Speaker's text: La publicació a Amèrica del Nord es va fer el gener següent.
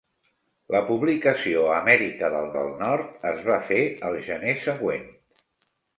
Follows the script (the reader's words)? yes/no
no